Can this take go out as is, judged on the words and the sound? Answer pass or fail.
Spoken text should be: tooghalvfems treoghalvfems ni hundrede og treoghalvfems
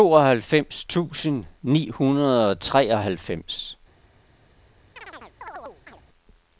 fail